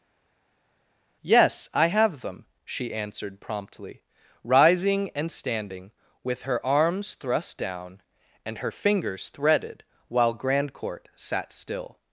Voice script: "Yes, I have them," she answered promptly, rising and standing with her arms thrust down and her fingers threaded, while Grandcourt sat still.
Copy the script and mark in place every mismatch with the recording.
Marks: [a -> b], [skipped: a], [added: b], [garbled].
"Yes, I have them," she answered promptly, rising and standing with her arms thrust down and her fingers threaded, while Grandcourt sat still.